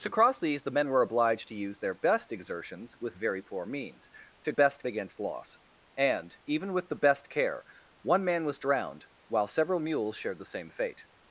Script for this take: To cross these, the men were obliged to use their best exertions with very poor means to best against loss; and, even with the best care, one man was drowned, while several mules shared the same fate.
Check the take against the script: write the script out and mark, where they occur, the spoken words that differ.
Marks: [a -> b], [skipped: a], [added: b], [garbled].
To cross these, the men were obliged to use their best exertions with very poor means to best against loss; and, even with the best care, one man was drowned, while several mules shared the same fate.